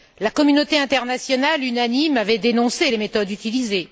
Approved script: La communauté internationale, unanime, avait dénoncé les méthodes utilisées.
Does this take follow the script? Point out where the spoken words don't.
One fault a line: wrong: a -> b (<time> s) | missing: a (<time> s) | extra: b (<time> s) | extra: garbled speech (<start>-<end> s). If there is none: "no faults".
no faults